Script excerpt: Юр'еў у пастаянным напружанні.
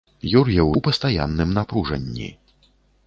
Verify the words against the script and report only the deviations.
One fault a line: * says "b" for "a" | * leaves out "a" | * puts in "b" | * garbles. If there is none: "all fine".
all fine